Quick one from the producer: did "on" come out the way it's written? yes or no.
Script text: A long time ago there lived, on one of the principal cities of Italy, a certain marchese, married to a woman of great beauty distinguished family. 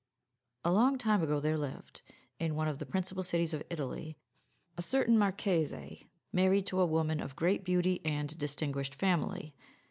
no